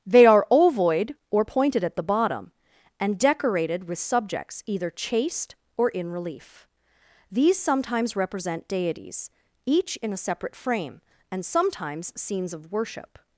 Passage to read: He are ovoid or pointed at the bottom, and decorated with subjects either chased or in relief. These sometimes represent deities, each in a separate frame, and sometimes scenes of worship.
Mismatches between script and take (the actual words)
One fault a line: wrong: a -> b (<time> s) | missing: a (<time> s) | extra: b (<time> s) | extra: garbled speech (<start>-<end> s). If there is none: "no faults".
wrong: He -> They (0.1 s)